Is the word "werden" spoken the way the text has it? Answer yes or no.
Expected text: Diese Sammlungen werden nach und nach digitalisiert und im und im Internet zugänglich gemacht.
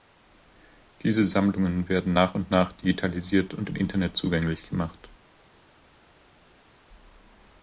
yes